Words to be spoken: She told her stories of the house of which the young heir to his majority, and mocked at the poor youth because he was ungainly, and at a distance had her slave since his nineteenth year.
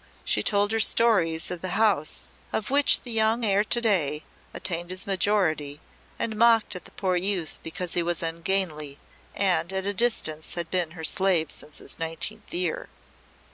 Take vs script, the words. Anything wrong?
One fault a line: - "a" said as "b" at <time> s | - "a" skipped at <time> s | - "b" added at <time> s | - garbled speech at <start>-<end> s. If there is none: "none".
- "day attained" added at 3.8 s
- "been" added at 10.7 s